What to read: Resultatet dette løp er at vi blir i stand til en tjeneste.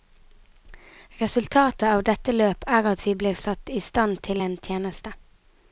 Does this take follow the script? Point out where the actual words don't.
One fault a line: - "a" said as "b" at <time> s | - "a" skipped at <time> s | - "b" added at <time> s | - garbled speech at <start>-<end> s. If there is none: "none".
- "av" added at 1.9 s
- "satt" added at 3.4 s